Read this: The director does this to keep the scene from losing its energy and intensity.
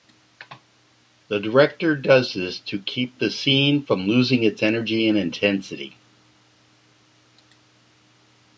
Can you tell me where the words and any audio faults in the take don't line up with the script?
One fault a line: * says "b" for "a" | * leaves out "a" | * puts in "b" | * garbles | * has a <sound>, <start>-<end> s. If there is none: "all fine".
all fine